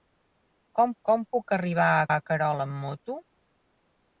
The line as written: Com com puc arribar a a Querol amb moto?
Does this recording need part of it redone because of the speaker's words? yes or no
no